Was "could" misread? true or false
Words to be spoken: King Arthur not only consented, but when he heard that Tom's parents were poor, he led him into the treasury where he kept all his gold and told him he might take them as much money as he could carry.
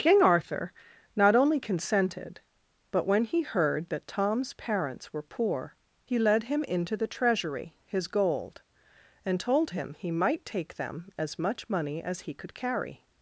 false